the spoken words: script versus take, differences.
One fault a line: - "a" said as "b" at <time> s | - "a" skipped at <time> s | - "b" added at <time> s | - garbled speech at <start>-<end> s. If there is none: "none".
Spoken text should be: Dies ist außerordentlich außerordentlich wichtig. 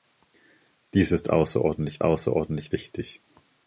none